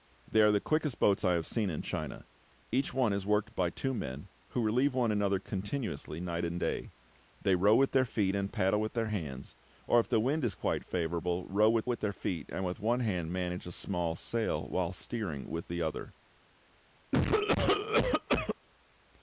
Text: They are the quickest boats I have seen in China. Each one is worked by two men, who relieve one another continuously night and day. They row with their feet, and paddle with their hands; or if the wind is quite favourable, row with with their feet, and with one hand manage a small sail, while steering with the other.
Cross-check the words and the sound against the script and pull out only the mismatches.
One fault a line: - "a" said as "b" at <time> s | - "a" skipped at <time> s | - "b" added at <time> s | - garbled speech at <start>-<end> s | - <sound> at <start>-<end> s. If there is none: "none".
- cough at 17.1-18.6 s